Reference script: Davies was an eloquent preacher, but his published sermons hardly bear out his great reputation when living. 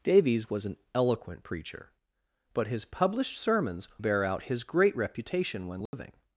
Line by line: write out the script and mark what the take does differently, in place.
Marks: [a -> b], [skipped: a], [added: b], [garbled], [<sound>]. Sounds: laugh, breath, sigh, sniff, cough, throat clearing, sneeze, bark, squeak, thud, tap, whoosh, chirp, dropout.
Davies was an eloquent preacher, but his published sermons [skipped: hardly] bear out his great reputation when living. [dropout]